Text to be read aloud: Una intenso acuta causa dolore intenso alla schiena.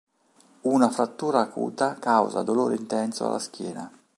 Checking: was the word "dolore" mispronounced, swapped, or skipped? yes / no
no